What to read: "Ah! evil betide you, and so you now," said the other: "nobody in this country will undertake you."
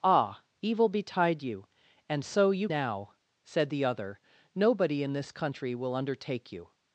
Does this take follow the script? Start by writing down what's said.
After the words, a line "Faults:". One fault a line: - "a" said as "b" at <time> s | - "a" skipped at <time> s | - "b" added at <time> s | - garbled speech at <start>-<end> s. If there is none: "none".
"Ah! evil betide you, and so you now," said the other: "nobody in this country will undertake you."
Faults:
none